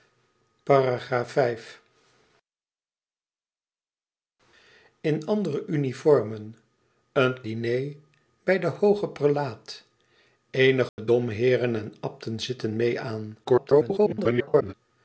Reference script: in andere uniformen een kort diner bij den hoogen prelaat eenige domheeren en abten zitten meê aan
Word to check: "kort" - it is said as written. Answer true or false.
false